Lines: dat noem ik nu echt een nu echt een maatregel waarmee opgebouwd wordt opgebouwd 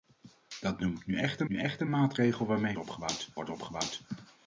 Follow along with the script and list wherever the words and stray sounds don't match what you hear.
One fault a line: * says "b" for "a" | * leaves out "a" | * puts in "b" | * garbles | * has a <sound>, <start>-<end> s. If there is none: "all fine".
all fine